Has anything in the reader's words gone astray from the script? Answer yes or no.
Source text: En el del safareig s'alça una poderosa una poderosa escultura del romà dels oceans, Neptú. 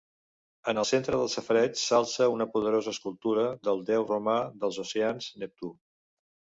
yes